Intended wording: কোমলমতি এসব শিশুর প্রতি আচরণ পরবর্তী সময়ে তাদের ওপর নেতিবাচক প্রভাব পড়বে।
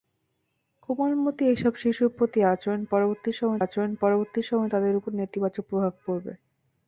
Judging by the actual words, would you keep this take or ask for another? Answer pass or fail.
fail